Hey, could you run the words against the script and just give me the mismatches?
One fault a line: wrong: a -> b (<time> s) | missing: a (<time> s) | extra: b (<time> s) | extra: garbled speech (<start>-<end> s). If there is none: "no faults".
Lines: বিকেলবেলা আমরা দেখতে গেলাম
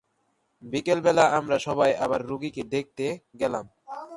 extra: সবাই আবার রোগীকে (1.6 s)